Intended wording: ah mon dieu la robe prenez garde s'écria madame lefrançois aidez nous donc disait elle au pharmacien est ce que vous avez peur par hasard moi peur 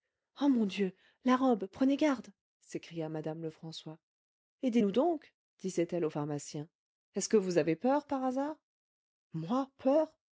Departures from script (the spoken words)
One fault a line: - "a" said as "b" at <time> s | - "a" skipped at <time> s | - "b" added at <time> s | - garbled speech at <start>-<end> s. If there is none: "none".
none